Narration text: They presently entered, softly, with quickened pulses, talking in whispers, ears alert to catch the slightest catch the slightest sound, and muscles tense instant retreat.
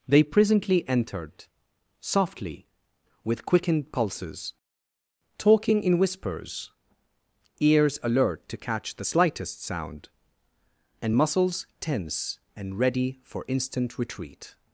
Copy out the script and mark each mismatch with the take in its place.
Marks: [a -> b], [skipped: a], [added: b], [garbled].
They presently entered, softly, with quickened pulses, talking in whispers, ears alert to catch the slightest [catch the slightest sound, -> sound and muscles tense] and [muscles tense -> ready for] instant retreat.